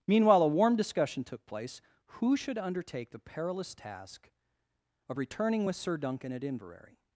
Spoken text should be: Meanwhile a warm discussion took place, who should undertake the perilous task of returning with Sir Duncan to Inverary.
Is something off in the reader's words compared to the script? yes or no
yes